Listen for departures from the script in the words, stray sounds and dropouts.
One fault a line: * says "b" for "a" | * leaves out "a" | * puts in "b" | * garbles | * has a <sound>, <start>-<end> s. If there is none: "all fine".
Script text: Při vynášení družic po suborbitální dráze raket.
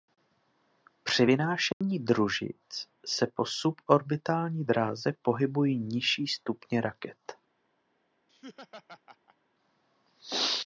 * has a dropout, 1.7-1.8 s
* puts in "se"
* puts in "pohybují nižší stupně"
* has a laugh, 8.3-9.4 s